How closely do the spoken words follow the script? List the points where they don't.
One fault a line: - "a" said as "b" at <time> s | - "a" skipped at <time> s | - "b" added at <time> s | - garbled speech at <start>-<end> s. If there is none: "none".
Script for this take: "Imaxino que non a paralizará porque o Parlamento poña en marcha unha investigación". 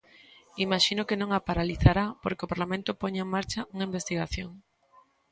none